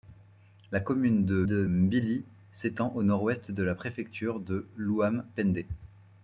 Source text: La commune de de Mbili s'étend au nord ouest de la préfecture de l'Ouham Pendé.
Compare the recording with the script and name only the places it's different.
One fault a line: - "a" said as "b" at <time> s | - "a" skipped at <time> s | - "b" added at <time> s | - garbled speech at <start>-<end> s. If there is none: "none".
none